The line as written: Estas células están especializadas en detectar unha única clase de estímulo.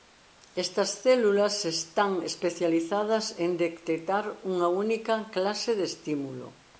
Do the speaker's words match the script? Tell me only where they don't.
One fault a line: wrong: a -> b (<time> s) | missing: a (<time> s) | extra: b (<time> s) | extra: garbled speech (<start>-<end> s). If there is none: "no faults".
no faults